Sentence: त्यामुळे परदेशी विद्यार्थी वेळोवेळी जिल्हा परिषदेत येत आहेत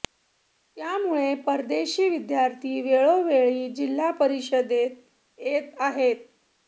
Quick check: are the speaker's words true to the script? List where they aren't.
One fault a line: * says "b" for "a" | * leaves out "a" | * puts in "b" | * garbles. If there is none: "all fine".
all fine